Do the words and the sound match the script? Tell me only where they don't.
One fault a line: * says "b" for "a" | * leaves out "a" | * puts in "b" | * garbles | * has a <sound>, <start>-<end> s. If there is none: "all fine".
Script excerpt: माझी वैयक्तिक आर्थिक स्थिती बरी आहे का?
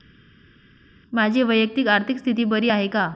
all fine